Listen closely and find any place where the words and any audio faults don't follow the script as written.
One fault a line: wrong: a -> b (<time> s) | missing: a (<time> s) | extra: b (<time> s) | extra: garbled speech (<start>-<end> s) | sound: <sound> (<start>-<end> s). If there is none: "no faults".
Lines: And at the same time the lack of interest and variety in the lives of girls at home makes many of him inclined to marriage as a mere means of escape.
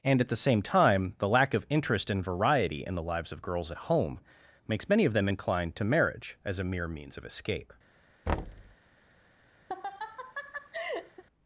wrong: him -> them (5.1 s)
sound: thud (8.3-8.7 s)
sound: laugh (9.7-11.2 s)